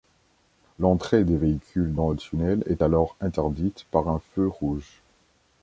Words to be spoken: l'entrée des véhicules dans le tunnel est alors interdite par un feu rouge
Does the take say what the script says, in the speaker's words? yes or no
yes